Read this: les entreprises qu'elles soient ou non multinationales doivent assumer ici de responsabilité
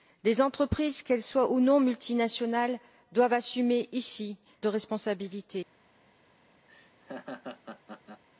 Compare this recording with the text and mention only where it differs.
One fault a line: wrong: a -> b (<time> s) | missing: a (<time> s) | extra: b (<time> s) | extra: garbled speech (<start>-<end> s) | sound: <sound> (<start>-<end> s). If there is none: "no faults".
sound: laugh (6.7-8.2 s)